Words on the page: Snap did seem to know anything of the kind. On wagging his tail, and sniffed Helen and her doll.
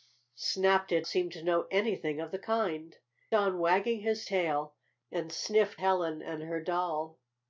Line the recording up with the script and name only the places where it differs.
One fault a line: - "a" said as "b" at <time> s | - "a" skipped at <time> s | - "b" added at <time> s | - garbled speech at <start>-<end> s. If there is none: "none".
none